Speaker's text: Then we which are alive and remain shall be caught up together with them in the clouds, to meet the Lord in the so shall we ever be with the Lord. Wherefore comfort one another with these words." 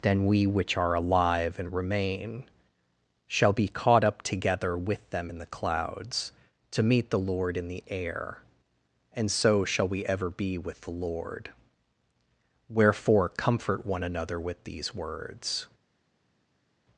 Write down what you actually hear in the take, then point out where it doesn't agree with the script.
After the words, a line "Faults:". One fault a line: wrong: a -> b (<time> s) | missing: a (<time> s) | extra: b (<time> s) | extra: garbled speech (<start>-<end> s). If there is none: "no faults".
Then we which are alive and remain shall be caught up together with them in the clouds, to meet the Lord in the air; and so shall we ever be with the Lord. Wherefore comfort one another with these words."
Faults:
extra: air and (7.9 s)